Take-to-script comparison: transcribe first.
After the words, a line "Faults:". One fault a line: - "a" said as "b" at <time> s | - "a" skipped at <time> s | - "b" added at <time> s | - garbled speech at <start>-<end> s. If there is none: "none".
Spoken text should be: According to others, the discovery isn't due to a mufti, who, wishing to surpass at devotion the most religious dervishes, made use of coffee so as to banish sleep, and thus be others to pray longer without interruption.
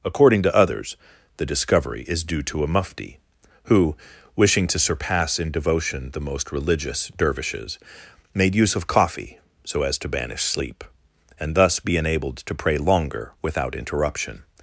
According to others, the discovery is due to a mufti, who, wishing to surpass in devotion the most religious dervishes, made use of coffee so as to banish sleep, and thus be enabled to pray longer without interruption.
Faults:
- "isn't" said as "is" at 2.1 s
- "at" said as "in" at 5.4 s
- "others" said as "enabled" at 12.0 s